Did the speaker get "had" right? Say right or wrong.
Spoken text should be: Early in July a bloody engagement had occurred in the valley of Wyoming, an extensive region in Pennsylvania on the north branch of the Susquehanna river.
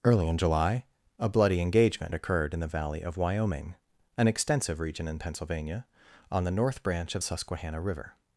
wrong